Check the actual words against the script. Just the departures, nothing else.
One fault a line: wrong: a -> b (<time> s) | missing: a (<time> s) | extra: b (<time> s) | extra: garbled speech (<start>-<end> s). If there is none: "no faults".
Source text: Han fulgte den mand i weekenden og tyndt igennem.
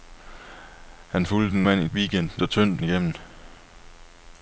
no faults